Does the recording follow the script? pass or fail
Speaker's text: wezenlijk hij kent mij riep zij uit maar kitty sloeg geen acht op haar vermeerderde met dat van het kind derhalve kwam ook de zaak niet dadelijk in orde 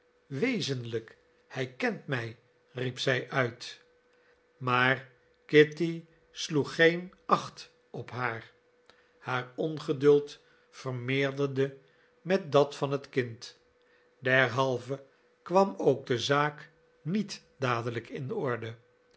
fail